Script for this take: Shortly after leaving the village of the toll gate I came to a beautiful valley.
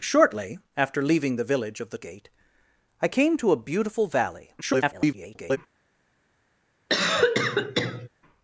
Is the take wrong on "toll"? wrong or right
wrong